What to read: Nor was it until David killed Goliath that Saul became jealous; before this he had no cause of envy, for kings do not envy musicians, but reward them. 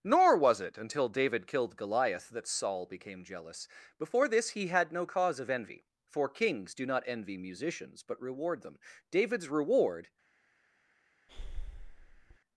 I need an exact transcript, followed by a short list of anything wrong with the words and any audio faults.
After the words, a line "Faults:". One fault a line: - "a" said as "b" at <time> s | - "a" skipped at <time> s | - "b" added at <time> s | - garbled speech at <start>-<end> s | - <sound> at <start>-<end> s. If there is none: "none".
Nor was it until David killed Goliath that Saul became jealous; before this he had no cause of envy, for kings do not envy musicians, but reward them. David's reward
Faults:
- "David's reward" added at 9.1 s
- breath at 11.3-12.4 s